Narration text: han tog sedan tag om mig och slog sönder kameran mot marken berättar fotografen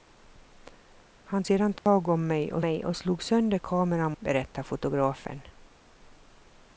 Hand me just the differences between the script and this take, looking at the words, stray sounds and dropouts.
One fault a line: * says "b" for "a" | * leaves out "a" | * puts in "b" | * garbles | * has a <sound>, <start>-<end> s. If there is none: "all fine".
* leaves out "tog"
* has a dropout, 1.8-1.9 s
* puts in "mig och"
* leaves out "mot marken"